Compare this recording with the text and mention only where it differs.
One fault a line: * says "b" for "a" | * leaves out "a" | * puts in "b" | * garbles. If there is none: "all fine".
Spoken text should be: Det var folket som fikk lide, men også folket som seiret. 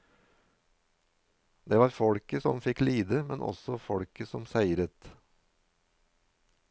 all fine